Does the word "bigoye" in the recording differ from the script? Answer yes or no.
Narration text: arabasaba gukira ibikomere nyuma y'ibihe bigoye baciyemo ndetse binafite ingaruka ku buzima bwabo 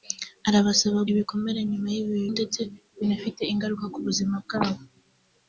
yes